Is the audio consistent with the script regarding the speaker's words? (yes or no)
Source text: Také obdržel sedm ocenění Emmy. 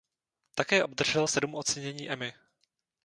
yes